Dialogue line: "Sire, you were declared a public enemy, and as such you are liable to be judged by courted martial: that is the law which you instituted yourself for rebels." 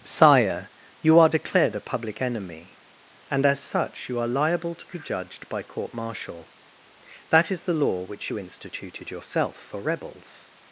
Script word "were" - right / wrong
wrong